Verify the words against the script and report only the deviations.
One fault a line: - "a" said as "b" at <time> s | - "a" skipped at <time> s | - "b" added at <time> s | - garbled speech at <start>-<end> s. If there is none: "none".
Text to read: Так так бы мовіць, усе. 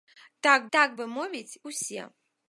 none